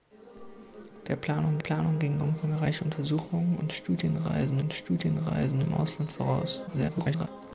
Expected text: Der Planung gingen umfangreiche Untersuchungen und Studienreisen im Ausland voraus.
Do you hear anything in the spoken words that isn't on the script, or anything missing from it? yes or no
yes